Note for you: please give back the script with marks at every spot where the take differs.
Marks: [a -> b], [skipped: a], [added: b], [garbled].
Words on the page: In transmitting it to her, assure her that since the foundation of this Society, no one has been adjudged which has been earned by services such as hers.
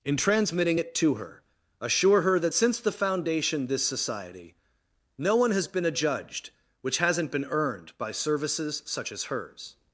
In transmitting it to her, assure her that since the foundation [skipped: of] this Society, no one has been adjudged which [has -> hasn't] been earned by services such as hers.